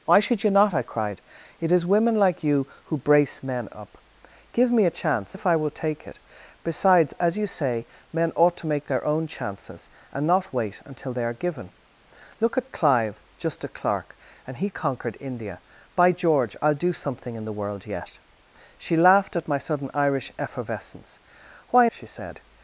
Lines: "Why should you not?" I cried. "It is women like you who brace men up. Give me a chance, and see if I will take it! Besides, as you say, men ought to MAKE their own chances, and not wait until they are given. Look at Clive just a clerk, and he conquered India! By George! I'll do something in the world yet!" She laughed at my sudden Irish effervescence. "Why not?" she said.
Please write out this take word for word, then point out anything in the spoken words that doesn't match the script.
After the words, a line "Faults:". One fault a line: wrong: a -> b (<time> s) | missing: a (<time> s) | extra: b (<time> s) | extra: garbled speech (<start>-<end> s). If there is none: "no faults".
"Why should you not?" I cried. "It is women like you who brace men up. Give me a chance, if I will take it! Besides, as you say, men ought to MAKE their own chances, and not wait until they are given. Look at Clive just a clerk, and he conquered India! By George! I'll do something in the world yet!" She laughed at my sudden Irish effervescence. "Why?" she said.
Faults:
missing: and see (5.3 s)
missing: not (21.9 s)